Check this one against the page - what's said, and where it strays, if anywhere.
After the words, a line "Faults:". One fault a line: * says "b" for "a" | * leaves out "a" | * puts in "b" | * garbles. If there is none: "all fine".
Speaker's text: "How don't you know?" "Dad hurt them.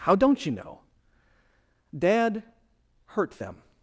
"How don't you know?" "Dad hurt them.
Faults:
all fine